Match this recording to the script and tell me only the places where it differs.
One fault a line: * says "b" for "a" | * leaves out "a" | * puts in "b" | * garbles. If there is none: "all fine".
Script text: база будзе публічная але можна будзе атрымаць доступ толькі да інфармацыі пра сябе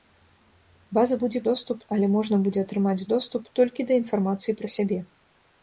* says "доступ" for "публічная"